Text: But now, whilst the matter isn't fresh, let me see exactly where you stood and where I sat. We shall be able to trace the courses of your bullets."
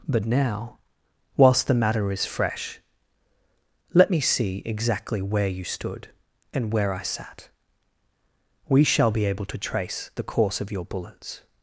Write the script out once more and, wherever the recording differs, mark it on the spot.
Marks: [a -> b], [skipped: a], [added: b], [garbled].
But now, whilst the matter [isn't -> is] fresh, let me see exactly where you stood and where I sat. We shall be able to trace the [courses -> course] of your bullets."